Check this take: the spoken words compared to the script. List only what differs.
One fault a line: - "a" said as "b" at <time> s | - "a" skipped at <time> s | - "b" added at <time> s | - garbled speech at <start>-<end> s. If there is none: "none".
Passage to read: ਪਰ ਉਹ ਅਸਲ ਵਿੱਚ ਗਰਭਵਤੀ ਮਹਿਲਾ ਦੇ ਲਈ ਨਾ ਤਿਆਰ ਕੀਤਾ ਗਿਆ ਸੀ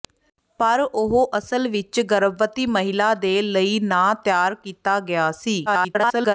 - garbled speech at 5.7-6.3 s